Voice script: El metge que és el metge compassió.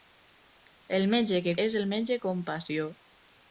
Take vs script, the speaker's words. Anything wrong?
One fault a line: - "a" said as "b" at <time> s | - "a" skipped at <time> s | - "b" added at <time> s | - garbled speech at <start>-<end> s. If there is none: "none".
none